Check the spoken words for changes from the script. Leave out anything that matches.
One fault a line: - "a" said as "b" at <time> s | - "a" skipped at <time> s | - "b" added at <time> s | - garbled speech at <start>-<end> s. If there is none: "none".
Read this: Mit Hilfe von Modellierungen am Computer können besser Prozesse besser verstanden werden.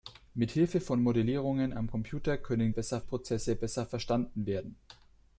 none